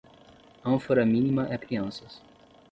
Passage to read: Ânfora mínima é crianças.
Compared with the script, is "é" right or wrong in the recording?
right